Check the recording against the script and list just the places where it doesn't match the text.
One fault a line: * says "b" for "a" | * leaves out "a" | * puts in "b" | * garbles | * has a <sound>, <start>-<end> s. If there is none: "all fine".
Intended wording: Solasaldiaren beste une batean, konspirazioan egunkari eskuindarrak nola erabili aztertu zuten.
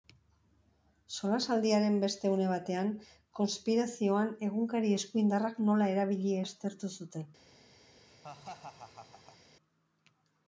* has a laugh, 8.1-9.4 s